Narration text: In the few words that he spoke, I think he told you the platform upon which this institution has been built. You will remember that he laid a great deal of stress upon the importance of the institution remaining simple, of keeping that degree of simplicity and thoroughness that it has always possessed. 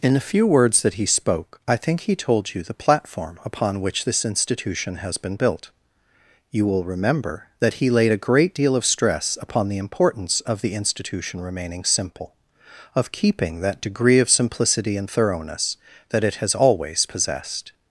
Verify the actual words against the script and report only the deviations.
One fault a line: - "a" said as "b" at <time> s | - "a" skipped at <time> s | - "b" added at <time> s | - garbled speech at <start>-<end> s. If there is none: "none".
none